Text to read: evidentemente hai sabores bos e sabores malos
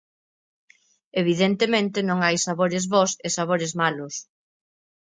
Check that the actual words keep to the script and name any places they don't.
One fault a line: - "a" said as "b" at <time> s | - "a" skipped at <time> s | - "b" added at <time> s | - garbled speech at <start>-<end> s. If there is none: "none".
- "non" added at 2.1 s